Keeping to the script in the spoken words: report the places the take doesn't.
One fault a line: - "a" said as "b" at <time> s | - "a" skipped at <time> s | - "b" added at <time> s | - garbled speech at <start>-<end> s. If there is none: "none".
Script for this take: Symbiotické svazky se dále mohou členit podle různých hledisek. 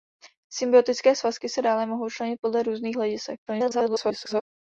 - garbled speech at 3.5-4.4 s